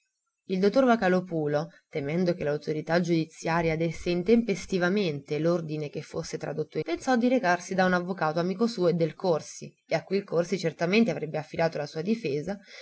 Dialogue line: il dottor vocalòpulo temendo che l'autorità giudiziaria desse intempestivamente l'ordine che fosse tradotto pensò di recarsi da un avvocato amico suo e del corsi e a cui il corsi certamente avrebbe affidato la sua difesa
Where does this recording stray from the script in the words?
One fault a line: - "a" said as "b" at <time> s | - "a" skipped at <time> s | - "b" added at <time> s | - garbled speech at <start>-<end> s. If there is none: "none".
none